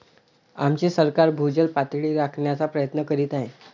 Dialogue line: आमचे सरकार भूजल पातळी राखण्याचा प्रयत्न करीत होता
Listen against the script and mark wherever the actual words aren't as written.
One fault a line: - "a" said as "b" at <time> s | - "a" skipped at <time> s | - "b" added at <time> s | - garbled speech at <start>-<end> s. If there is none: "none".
- "होता" said as "आहे" at 3.3 s